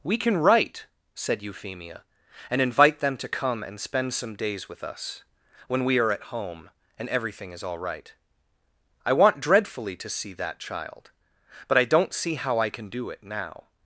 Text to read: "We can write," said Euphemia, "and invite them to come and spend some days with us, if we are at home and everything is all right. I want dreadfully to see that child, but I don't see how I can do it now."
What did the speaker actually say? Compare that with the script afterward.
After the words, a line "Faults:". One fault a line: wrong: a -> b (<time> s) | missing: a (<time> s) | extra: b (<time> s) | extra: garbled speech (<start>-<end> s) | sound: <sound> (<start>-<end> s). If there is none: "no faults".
"We can write," said Euphemia, "and invite them to come and spend some days with us, when we are at home and everything is all right. I want dreadfully to see that child, but I don't see how I can do it now."
Faults:
wrong: if -> when (5.7 s)